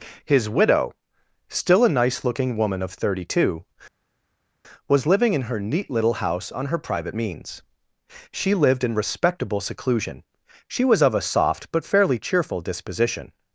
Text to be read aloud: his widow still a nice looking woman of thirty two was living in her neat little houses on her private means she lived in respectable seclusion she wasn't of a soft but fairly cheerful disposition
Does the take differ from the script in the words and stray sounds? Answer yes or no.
yes